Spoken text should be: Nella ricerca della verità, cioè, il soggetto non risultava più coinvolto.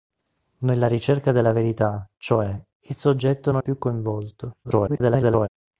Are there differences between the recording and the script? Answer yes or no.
yes